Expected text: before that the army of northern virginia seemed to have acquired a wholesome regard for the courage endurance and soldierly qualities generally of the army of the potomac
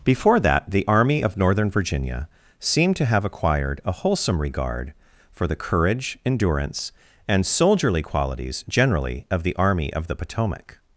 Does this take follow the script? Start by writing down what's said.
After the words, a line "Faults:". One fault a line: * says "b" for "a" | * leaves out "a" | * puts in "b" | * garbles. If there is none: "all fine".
before that the army of northern virginia seemed to have acquired a wholesome regard for the courage endurance and soldierly qualities generally of the army of the potomac
Faults:
all fine